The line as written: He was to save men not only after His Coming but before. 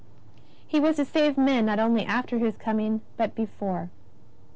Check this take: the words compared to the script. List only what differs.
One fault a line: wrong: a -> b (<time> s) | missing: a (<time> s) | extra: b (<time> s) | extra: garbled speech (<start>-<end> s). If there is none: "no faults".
no faults